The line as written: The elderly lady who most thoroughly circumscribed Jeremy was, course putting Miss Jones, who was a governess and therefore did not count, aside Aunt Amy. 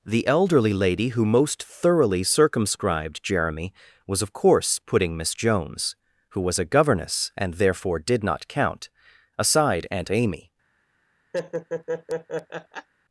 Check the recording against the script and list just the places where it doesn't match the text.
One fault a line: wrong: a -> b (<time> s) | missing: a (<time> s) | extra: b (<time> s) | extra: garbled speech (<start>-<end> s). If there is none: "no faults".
extra: of (4.2 s)